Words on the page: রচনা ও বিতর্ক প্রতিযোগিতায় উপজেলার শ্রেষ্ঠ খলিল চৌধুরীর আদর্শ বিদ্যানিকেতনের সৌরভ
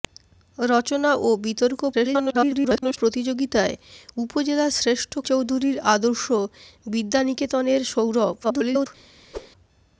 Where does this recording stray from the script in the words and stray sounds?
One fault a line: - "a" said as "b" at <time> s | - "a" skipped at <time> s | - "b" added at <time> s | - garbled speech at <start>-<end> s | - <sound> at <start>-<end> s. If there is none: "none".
- garbled speech at 1.9-3.0 s
- "খলিল" skipped at 5.1 s
- garbled speech at 8.4-8.9 s
- whoosh at 9.3-9.5 s